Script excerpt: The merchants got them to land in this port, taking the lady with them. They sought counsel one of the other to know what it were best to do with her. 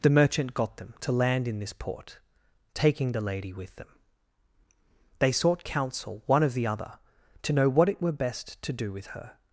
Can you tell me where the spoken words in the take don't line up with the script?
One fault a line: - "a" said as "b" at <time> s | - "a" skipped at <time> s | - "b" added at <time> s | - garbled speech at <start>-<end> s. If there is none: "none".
- "merchants" said as "merchant" at 0.1 s